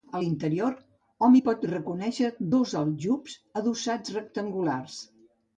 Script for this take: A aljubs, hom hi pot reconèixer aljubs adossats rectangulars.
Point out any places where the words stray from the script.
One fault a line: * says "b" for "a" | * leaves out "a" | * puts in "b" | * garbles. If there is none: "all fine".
* says "l'interior" for "aljubs"
* puts in "dos"